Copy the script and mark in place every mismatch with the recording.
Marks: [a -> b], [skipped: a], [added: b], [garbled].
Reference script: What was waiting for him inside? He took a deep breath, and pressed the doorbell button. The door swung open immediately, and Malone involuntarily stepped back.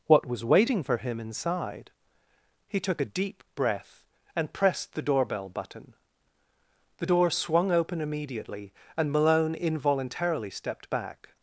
What was waiting for him inside? He took a deep breath, and pressed the doorbell button. The door swung open immediately, and Malone involuntarily stepped back.